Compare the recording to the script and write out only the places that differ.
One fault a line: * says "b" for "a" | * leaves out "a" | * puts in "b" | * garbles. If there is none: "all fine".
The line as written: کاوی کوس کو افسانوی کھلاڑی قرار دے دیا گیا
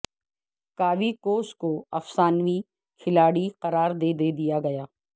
* puts in "دے"